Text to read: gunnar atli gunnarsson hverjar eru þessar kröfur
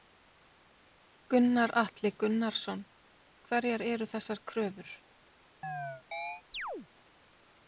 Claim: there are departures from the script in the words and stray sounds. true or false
true